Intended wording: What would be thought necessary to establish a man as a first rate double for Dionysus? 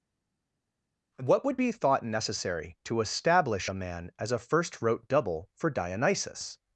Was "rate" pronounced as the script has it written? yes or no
no